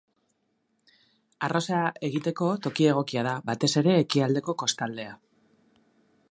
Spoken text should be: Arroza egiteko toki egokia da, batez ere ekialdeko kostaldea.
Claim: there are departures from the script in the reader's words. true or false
false